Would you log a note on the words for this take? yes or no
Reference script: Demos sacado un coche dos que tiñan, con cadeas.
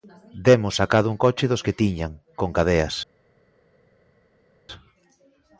no